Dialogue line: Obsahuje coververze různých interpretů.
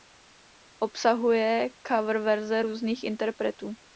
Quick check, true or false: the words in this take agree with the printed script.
true